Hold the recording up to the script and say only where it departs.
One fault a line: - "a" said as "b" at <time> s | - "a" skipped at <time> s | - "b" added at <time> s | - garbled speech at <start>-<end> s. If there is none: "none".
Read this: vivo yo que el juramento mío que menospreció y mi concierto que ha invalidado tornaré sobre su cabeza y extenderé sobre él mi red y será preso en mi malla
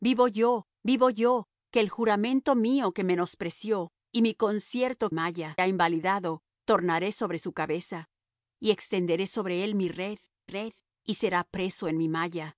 - "vivo yo" added at 0.8 s
- "que" said as "malla" at 5.1 s
- "red" added at 10.4 s